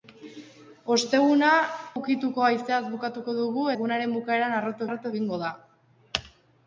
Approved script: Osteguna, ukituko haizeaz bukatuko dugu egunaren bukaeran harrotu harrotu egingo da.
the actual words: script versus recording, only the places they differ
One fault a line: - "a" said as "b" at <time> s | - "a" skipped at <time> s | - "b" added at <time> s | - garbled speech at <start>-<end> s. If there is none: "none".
none